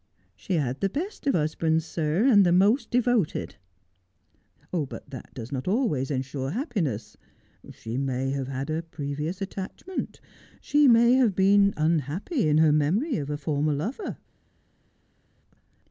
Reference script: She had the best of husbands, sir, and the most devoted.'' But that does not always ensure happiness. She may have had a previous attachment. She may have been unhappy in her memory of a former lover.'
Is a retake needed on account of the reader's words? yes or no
no